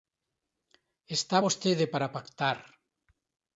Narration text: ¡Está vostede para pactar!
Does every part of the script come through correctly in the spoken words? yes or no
yes